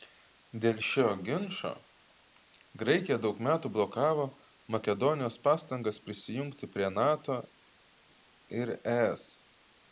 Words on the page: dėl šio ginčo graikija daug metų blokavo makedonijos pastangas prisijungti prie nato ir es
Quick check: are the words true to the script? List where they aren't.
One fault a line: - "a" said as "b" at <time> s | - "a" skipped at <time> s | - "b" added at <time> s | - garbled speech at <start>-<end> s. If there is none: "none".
none